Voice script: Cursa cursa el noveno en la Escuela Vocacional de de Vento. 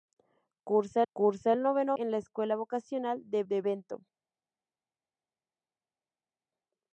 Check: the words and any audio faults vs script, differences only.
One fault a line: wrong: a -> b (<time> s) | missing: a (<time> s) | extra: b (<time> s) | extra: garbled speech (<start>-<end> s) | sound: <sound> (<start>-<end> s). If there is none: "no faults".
no faults